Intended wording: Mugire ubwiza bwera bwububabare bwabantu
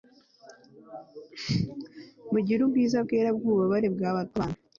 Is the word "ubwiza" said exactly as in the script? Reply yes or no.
yes